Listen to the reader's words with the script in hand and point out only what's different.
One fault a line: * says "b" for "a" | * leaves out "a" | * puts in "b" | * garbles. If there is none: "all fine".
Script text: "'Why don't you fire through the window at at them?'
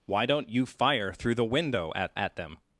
all fine